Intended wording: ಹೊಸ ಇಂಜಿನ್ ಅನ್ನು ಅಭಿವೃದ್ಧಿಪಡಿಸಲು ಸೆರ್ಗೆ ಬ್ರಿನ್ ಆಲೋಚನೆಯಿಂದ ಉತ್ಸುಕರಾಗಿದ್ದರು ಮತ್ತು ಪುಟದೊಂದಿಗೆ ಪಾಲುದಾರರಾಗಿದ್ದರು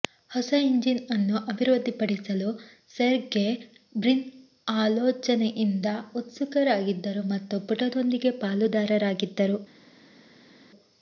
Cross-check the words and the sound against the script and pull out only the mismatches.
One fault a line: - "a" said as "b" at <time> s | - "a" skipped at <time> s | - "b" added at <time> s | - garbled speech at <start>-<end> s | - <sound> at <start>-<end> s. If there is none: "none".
none